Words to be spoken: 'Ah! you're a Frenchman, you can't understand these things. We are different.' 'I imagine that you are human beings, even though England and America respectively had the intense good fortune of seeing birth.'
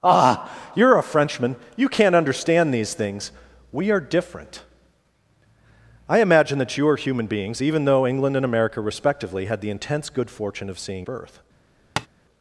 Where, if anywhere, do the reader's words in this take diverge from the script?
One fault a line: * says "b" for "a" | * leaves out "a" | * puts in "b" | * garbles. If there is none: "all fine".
all fine